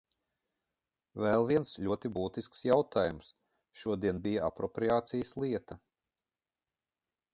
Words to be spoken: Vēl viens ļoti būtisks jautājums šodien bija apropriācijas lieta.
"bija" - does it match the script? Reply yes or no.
yes